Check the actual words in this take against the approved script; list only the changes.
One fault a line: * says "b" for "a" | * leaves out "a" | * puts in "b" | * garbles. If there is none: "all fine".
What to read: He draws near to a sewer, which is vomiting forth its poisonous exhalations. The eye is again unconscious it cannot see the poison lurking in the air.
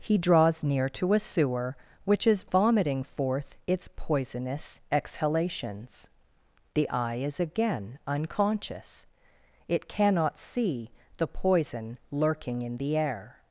all fine